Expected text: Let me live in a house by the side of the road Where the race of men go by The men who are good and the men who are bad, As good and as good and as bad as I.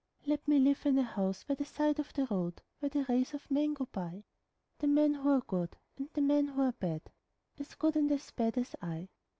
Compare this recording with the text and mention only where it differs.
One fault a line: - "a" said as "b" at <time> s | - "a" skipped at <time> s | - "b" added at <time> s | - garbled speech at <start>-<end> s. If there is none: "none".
- "good and as" skipped at 8.3 s